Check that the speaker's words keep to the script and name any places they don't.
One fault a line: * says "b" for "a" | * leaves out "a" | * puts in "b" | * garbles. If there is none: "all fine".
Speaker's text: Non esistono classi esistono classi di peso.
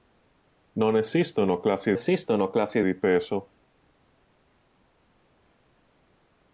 all fine